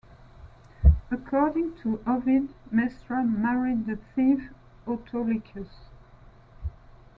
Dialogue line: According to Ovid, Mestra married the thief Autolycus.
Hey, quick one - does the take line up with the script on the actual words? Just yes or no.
yes